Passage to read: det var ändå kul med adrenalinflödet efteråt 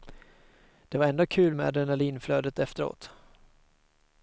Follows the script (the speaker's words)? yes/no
yes